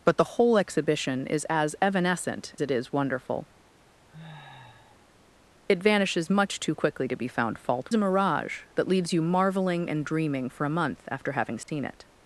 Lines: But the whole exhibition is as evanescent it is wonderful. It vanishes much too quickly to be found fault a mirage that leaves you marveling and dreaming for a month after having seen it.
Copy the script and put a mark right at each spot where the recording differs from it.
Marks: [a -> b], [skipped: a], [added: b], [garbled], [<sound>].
But the whole exhibition is as evanescent it is wonderful. [sniff] It vanishes much too quickly to be found fault a mirage that leaves you marveling and dreaming for a month after having seen [dropout] it.